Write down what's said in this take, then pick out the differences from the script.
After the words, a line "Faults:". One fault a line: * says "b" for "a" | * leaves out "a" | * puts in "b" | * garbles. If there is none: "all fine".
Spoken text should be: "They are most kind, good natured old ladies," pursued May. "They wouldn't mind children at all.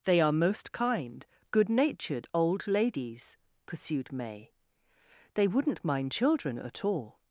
"They are most kind, good natured old ladies," pursued May. "They wouldn't mind children at all.
Faults:
all fine